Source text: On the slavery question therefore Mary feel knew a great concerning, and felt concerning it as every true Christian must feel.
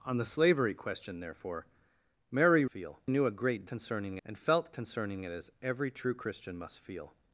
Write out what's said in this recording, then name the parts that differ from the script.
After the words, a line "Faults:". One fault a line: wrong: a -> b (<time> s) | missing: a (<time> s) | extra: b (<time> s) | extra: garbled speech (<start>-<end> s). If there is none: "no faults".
On the slavery question therefore Mary feel knew a great concerning, and felt concerning it as every true Christian must feel.
Faults:
no faults